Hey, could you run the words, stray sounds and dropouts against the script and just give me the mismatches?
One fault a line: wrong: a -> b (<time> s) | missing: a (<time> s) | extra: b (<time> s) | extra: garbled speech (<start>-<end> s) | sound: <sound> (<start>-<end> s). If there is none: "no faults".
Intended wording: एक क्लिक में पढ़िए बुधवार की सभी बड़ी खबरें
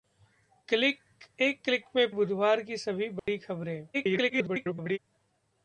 missing: पढ़िए (2.1 s)
sound: dropout (3.2-3.3 s)
extra: garbled speech (3.9-5.0 s)